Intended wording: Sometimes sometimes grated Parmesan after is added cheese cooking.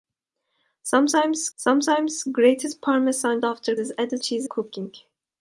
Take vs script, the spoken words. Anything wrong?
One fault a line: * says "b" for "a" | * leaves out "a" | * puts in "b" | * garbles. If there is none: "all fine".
all fine